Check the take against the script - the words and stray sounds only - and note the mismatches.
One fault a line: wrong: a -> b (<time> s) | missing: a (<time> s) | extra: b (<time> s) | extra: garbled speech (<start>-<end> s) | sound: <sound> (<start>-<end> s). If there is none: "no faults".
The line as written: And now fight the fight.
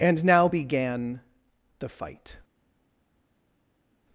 wrong: fight -> began (0.4 s)